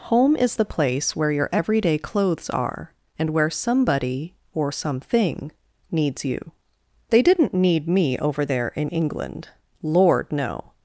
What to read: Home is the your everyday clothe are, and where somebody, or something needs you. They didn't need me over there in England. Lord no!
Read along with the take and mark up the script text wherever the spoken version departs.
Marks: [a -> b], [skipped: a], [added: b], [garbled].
Home is the [added: place where] your everyday [clothe -> clothes] are, and where somebody, or something needs you. They didn't need me over there in England. Lord no!